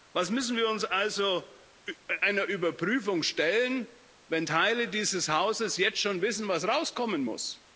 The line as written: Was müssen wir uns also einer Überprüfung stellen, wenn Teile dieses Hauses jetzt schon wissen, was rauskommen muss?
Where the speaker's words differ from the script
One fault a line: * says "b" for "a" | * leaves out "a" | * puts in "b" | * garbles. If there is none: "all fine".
all fine